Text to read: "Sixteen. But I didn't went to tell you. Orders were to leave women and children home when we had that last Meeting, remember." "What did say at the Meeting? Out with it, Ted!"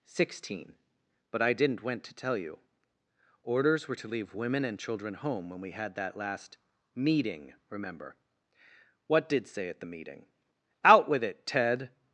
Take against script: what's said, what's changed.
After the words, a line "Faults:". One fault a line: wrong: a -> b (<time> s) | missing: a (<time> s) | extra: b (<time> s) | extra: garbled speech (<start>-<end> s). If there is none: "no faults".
"Sixteen. But I didn't went to tell you. Orders were to leave women and children home when we had that last Meeting, remember." "What did say at the Meeting? Out with it, Ted!"
Faults:
no faults